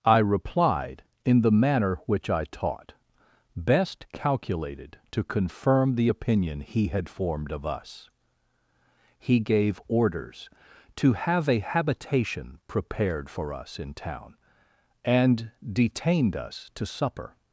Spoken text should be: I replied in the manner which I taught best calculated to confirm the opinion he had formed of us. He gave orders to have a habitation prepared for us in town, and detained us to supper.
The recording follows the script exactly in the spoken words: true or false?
true